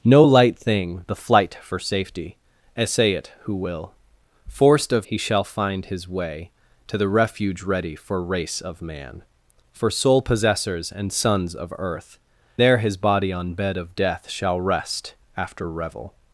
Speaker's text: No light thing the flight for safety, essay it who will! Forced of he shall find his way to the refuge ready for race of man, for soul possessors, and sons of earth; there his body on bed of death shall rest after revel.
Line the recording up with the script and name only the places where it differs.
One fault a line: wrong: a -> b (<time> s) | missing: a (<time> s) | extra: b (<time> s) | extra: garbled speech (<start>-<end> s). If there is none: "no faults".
no faults